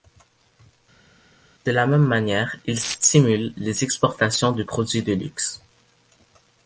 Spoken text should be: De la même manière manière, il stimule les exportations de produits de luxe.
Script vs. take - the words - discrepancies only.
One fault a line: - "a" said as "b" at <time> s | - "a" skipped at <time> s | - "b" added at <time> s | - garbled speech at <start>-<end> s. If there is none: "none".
- "manière" skipped at 2.5 s